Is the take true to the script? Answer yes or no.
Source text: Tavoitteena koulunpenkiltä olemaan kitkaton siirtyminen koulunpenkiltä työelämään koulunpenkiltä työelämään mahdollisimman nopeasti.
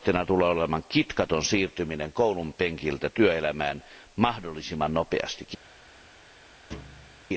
no